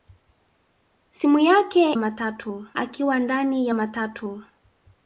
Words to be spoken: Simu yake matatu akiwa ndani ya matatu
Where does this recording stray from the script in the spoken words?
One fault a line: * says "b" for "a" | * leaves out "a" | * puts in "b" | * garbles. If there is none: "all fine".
all fine